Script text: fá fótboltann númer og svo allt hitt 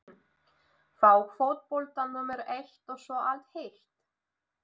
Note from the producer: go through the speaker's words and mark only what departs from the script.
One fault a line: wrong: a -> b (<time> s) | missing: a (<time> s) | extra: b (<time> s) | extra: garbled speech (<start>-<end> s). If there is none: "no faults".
extra: eitt (2.6 s)